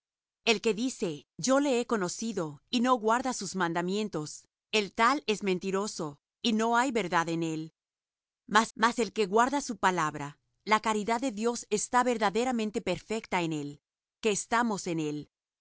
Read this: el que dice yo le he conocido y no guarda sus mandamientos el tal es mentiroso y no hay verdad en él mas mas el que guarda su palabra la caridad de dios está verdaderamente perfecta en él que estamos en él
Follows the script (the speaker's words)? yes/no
yes